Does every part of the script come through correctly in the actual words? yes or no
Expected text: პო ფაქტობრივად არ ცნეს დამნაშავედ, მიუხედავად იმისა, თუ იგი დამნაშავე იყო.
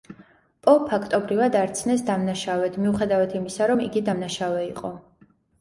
no